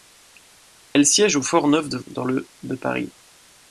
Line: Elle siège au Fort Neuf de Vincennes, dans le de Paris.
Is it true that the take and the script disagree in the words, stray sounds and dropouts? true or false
true